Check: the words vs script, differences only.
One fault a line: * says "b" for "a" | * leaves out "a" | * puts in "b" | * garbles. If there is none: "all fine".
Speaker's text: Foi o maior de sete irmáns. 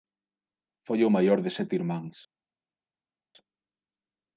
all fine